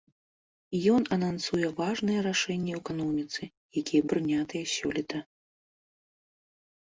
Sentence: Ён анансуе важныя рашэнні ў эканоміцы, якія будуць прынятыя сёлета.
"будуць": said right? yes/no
no